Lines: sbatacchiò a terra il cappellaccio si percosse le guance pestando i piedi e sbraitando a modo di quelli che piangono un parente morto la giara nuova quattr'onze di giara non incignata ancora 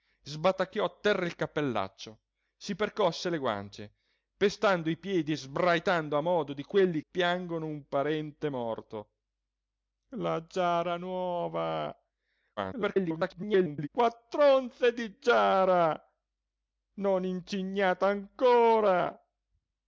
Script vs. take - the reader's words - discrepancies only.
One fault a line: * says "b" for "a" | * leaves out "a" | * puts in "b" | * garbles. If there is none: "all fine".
* leaves out "che"
* garbles